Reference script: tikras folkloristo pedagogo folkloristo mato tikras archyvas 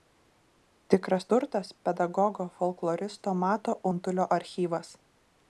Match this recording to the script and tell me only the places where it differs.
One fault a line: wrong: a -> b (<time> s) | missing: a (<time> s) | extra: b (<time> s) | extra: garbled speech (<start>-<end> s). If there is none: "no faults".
wrong: folkloristo -> turtas (1.3 s)
wrong: tikras -> untulio (3.9 s)